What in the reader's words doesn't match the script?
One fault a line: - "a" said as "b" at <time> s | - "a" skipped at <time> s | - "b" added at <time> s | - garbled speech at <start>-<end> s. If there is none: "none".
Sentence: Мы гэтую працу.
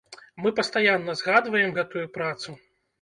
- "пастаянна згадваем" added at 0.6 s